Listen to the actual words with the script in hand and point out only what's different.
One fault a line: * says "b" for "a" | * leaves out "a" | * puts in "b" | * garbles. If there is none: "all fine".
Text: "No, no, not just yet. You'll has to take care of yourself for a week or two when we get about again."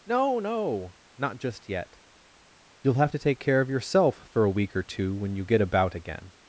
* says "have" for "has"
* says "you" for "we"